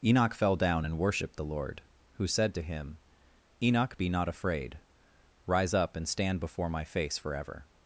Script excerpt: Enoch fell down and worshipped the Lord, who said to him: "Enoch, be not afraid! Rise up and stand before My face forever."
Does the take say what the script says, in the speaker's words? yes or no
yes